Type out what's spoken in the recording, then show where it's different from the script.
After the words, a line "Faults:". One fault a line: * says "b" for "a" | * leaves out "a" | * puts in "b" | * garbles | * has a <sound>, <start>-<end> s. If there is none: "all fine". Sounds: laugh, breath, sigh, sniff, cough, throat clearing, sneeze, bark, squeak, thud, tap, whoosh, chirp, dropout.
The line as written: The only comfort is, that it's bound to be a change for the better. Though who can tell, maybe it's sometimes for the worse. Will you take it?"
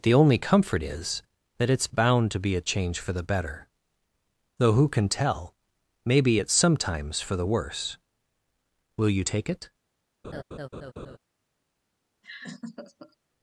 The only comfort is, that it's bound to be a change for the better. Though who can tell, maybe it's sometimes for the worse. Will you take it?"
Faults:
* has a laugh, 10.2-11.2 s
* has a laugh, 12.2-13.2 s